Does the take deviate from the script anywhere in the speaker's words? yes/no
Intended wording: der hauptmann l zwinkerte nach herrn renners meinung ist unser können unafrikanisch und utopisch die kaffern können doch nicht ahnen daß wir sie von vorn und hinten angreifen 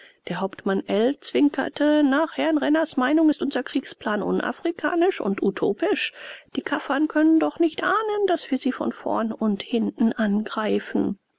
yes